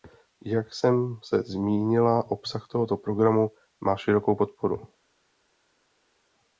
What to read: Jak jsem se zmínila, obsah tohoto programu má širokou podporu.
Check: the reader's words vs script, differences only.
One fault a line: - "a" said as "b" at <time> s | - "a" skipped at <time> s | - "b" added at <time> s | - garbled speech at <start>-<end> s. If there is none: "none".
none